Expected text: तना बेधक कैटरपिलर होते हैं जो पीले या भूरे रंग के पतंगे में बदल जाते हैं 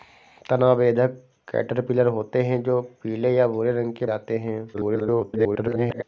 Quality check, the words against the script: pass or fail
fail